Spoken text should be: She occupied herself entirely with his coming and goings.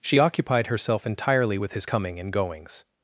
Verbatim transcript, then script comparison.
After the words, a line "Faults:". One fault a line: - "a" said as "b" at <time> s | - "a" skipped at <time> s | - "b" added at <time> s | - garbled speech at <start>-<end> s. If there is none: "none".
She occupied herself entirely with his coming and goings.
Faults:
none